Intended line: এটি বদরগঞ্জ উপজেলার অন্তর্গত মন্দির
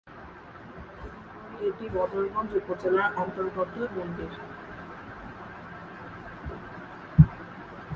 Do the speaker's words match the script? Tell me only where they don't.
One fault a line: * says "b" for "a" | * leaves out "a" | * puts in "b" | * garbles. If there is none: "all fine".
all fine